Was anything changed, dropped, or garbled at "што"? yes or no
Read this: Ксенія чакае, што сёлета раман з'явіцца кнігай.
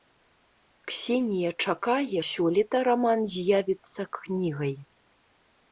yes